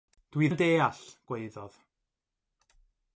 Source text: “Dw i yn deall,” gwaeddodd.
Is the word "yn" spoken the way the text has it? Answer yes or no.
yes